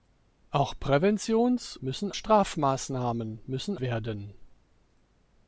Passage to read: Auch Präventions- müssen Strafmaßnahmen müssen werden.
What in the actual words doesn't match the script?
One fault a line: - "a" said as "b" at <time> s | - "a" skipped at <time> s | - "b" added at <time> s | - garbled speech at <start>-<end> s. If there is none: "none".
none